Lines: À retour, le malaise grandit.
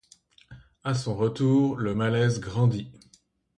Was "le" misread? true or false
false